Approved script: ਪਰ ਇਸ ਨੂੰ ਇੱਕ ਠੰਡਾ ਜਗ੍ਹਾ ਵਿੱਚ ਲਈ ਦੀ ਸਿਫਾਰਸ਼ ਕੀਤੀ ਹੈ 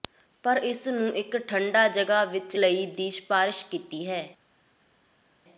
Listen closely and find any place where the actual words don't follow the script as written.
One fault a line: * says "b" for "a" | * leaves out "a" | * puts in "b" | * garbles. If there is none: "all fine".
all fine